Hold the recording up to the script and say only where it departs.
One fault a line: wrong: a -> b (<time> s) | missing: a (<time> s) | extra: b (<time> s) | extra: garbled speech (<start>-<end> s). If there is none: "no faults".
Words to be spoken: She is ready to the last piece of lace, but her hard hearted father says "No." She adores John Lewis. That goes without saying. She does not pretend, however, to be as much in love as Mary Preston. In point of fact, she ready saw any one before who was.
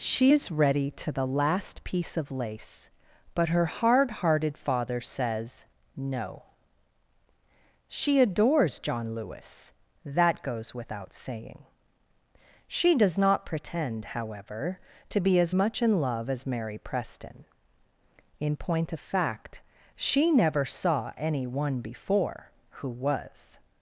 wrong: ready -> never (20.3 s)